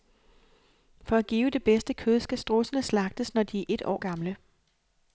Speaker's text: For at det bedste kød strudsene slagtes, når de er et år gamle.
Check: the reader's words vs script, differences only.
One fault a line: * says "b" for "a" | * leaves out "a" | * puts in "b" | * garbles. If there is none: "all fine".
* puts in "give"
* puts in "skal"